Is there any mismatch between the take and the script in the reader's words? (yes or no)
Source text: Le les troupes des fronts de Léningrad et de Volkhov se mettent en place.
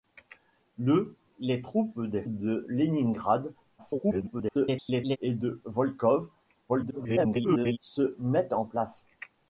yes